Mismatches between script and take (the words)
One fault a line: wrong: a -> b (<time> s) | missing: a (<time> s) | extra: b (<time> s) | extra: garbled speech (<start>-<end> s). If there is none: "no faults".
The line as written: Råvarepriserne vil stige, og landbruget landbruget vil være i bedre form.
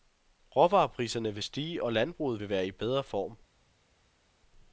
missing: landbruget (2.4 s)